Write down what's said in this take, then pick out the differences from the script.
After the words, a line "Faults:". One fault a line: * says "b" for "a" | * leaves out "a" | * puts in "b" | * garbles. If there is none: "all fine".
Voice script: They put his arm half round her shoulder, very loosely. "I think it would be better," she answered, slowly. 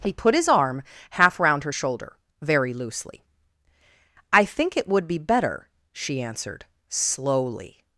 He put his arm half round her shoulder, very loosely. "I think it would be better," she answered, slowly.
Faults:
* says "He" for "They"